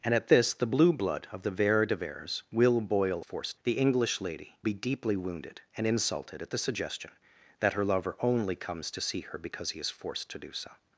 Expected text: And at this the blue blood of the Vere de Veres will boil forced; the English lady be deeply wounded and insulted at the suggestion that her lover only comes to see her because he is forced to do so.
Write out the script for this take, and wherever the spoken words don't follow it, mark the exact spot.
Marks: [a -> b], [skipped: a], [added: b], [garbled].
And at this the blue blood of the Vere de Veres will boil forced; the English lady be deeply wounded and insulted at the suggestion that her lover only comes to see her because he is forced to do so.